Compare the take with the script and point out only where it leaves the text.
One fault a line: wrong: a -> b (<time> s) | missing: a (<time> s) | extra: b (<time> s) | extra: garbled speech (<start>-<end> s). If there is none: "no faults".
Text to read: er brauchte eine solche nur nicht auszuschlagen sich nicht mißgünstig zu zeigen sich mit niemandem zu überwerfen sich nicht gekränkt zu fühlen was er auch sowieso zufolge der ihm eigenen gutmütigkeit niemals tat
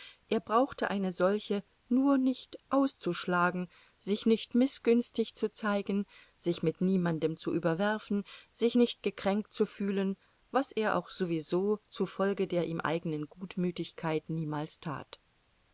no faults